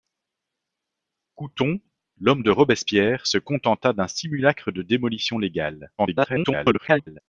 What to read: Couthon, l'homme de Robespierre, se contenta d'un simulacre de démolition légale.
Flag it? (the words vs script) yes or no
yes